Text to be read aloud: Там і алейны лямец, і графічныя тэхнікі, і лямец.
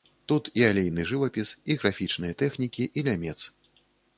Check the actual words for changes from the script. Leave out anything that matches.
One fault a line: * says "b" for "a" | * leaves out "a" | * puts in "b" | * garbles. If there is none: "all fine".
* says "Тут" for "Там"
* says "жывапіс" for "лямец"